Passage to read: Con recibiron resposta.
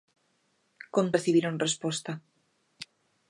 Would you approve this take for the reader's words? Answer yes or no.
yes